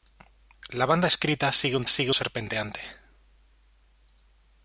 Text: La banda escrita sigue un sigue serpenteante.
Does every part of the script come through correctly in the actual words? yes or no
yes